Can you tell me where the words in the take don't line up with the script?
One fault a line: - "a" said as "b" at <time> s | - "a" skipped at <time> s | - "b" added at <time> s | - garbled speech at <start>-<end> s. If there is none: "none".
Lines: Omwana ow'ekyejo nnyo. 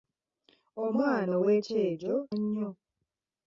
none